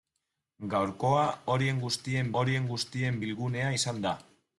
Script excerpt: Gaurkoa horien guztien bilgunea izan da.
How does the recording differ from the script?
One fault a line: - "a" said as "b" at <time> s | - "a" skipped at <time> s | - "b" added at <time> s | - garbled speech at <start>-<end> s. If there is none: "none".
- "horien guztien" added at 2.4 s